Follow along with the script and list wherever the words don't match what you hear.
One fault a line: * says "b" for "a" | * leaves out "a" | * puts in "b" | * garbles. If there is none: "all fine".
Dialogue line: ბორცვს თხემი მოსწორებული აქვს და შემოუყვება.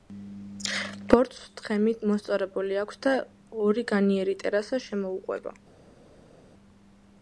* puts in "ორი განიერი ტერასა"